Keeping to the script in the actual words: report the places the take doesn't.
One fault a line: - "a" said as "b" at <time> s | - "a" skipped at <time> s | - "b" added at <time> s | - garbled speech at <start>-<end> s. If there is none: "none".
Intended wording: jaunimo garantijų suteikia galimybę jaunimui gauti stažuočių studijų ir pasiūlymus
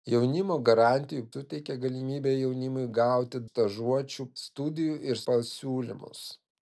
none